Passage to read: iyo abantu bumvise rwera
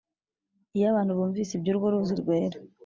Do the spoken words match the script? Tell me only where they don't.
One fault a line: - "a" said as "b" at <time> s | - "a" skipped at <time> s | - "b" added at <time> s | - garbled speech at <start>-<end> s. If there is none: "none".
- "iby'urwo ruzi" added at 1.6 s